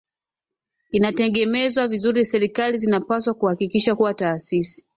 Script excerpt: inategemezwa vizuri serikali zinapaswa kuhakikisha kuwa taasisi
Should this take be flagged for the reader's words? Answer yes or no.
no